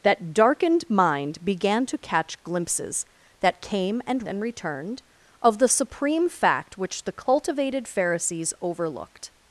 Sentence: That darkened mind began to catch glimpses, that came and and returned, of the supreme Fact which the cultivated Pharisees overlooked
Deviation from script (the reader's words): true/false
false